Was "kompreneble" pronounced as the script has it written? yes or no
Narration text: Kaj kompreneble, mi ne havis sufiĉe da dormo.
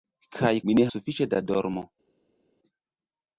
no